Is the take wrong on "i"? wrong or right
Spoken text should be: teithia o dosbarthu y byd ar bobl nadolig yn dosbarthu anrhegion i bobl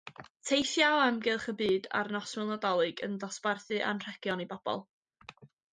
right